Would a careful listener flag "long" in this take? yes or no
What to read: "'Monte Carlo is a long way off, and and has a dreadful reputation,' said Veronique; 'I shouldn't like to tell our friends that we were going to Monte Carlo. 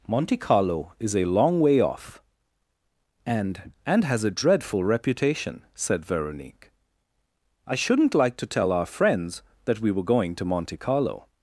no